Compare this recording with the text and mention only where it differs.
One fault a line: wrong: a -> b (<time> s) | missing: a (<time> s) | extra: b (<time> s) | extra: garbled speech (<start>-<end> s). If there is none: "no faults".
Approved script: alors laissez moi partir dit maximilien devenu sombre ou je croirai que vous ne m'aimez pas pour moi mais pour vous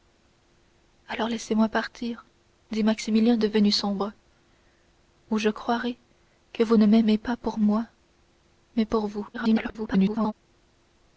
extra: garbled speech (9.3-10.3 s)